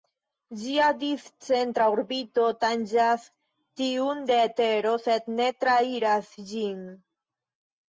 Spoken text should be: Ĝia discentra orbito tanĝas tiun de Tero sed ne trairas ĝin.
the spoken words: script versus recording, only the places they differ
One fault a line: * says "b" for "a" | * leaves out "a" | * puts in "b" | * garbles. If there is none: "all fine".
all fine